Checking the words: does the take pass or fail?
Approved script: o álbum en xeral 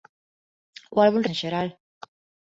pass